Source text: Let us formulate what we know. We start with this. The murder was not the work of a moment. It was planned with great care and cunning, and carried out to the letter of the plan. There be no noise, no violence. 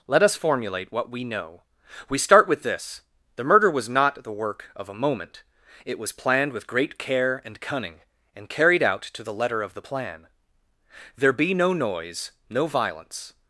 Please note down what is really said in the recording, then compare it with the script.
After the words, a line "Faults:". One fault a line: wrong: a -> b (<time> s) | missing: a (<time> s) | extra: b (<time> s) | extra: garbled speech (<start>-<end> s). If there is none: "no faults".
Let us formulate what we know. We start with this. The murder was not the work of a moment. It was planned with great care and cunning, and carried out to the letter of the plan. There be no noise, no violence.
Faults:
no faults